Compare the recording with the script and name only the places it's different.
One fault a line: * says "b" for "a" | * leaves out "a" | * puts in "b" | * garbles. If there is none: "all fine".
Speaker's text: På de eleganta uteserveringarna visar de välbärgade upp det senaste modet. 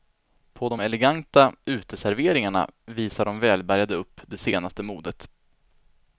all fine